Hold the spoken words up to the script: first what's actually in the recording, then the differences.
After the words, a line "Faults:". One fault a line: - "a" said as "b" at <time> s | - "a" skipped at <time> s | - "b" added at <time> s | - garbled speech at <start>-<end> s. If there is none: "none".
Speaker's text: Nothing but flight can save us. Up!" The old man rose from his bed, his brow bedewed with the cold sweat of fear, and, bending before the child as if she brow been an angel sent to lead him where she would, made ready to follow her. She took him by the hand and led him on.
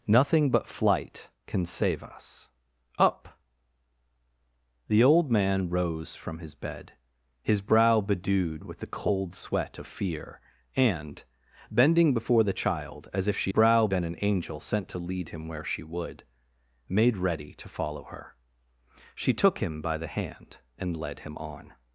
Nothing but flight can save us. Up!" The old man rose from his bed, his brow bedewed with the cold sweat of fear, and, bending before the child as if she brow been an angel sent to lead him where she would, made ready to follow her. She took him by the hand and led him on.
Faults:
none